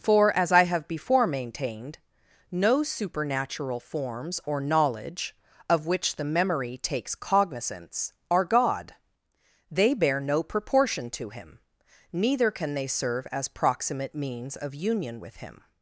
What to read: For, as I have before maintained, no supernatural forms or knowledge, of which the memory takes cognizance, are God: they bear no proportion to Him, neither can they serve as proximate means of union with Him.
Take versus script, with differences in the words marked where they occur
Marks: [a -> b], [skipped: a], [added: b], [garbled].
For, as I have before maintained, no supernatural forms or knowledge, of which the memory takes cognizance, are God: they bear no proportion to Him, neither can they serve as proximate means of union with Him.